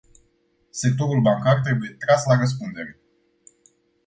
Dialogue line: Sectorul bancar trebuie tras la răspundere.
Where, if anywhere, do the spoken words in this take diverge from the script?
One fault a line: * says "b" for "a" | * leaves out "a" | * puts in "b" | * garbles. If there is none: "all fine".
all fine